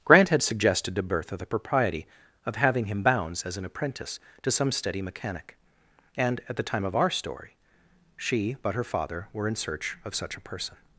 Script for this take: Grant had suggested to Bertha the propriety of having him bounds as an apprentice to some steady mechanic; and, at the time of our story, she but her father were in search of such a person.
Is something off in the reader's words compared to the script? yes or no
no